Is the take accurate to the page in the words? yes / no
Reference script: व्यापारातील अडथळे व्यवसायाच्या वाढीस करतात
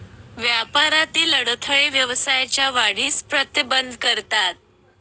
no